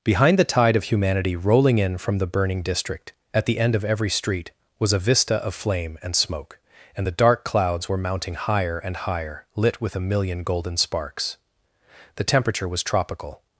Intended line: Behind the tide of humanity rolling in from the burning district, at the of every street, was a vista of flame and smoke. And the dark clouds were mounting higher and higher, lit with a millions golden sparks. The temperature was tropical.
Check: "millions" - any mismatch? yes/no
yes